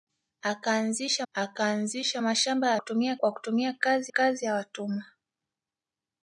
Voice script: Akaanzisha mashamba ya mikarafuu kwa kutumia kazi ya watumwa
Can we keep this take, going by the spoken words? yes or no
no